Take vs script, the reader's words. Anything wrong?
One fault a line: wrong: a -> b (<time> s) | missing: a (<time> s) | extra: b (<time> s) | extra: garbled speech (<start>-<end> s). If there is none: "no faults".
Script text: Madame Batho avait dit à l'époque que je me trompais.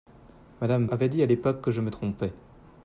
missing: Batho (0.9 s)